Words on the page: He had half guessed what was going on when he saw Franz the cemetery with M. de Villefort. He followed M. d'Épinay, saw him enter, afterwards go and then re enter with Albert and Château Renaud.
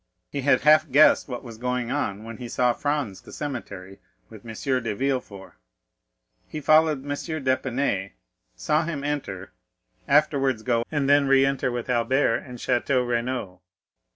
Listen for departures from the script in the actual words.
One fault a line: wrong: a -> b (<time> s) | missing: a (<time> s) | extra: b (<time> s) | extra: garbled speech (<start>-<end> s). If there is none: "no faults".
no faults